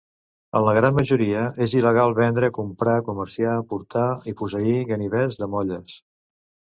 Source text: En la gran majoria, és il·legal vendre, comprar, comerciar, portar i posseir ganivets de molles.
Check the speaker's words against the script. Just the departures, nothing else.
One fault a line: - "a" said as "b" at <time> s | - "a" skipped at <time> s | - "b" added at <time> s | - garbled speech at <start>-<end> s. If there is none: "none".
none